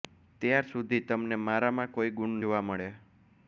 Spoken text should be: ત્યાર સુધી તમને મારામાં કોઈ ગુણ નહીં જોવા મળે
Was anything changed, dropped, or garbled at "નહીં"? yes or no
yes